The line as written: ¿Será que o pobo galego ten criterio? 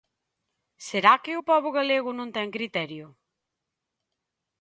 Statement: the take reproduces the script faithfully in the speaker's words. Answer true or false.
false